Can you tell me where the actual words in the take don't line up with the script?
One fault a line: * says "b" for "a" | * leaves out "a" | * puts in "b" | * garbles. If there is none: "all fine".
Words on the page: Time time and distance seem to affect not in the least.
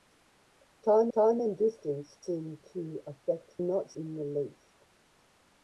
all fine